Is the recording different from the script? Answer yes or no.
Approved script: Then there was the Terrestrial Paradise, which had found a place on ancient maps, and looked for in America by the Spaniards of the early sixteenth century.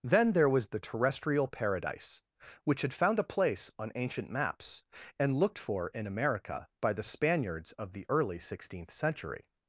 no